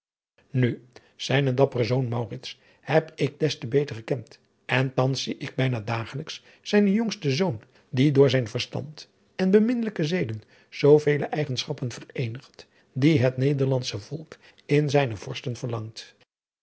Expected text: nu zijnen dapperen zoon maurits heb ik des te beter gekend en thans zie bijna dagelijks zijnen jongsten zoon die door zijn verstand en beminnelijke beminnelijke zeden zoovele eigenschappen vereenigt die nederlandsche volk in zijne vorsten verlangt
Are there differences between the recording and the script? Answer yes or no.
yes